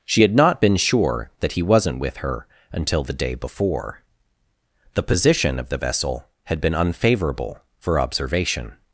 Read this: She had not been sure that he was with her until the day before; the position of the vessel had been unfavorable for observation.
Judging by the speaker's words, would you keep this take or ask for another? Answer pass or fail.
fail